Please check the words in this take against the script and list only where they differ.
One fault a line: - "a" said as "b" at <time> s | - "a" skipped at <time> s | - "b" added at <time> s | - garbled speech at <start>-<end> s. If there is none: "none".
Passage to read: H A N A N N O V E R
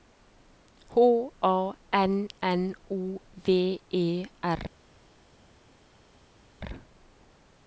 - "A N" skipped at 2.3 s